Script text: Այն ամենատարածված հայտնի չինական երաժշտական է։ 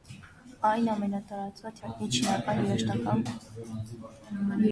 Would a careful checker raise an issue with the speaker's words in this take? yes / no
no